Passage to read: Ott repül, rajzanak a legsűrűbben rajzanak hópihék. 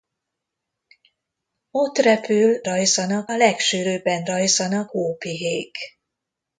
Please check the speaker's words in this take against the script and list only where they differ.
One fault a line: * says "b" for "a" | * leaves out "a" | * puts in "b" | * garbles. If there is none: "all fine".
all fine